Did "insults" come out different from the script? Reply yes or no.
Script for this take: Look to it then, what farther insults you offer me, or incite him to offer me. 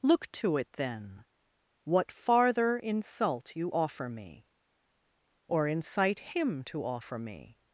yes